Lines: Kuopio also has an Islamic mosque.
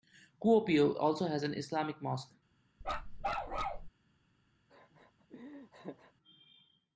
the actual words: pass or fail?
pass